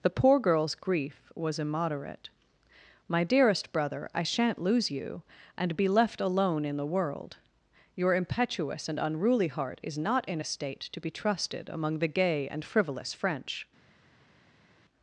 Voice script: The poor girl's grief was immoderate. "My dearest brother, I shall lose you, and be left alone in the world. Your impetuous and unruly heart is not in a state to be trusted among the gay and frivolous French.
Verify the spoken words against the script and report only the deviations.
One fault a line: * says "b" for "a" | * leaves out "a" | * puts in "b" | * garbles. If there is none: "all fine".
* says "shan't" for "shall"